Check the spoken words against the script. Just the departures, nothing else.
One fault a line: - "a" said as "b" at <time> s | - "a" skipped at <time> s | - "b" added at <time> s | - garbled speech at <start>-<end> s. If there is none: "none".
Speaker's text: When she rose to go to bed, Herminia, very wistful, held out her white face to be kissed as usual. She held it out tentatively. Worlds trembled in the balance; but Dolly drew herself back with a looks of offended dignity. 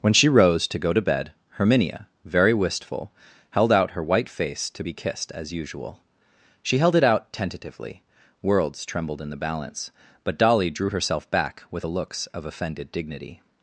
none